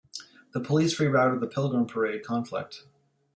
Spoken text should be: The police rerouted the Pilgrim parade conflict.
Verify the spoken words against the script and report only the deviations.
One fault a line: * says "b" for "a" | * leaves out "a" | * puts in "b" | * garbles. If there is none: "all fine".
all fine